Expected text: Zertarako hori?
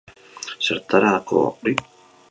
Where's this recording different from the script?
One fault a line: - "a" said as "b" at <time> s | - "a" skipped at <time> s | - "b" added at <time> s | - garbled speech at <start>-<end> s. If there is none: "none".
none